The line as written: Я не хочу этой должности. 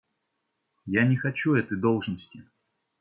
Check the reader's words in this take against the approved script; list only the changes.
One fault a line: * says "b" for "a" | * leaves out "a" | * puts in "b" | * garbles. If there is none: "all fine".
all fine